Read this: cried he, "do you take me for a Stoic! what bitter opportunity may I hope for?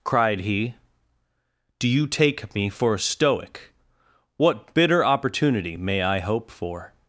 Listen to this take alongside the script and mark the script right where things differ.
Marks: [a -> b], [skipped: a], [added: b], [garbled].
cried he, "do you take me for a Stoic! what bitter opportunity may I hope for?